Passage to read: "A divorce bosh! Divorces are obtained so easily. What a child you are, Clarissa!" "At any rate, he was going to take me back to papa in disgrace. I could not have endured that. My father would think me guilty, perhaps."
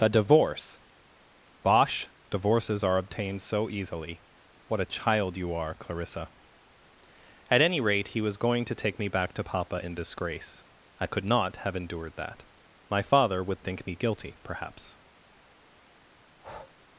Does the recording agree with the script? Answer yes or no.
yes